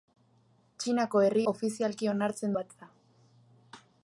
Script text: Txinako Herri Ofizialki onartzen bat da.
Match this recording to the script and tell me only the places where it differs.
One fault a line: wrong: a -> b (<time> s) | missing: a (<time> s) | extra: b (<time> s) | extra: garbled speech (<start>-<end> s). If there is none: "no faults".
no faults